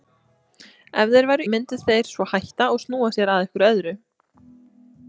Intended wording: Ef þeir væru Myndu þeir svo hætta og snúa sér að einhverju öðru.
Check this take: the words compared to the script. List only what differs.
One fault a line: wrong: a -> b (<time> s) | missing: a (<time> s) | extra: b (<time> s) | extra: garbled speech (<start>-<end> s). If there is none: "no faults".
no faults